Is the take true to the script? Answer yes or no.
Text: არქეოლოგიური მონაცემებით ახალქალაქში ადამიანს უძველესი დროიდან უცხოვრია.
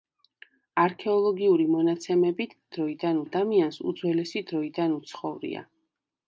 no